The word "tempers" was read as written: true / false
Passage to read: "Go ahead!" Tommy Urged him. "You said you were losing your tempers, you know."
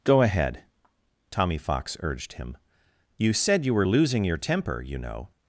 false